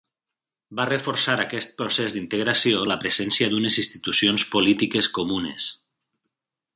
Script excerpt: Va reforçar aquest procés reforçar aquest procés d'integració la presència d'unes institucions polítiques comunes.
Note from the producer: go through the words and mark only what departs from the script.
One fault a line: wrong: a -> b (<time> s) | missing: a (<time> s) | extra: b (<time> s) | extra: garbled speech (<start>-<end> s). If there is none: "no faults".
missing: reforçar aquest procés (2.2 s)